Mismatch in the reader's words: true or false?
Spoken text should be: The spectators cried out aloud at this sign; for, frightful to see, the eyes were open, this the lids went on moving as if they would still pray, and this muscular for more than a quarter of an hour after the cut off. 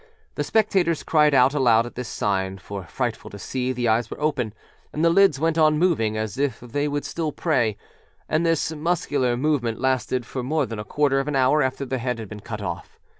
true